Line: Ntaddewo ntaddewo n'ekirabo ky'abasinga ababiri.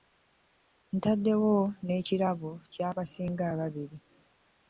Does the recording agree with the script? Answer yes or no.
no